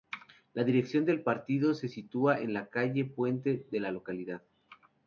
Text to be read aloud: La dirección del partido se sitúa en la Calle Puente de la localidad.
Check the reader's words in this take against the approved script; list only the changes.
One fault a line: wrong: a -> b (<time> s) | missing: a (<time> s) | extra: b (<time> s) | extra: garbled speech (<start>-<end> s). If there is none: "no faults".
no faults